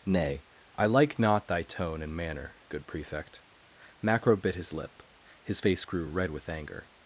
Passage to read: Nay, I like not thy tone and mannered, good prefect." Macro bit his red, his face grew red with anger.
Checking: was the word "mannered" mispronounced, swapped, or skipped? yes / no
yes